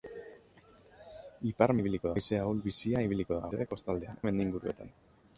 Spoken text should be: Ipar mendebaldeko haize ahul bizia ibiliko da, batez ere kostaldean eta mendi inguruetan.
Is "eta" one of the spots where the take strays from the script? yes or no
yes